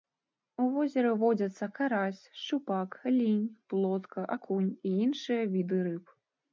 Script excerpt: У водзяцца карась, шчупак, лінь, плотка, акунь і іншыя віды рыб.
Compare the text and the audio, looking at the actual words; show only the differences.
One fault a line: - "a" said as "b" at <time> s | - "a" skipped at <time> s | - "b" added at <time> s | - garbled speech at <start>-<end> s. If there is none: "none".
- "возеры" added at 0.8 s